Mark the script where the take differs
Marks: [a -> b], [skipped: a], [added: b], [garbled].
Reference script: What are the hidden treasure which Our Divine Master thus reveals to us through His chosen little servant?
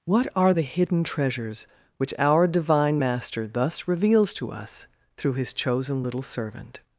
What are the hidden [treasure -> treasures] which Our Divine Master thus reveals to us through His chosen little servant?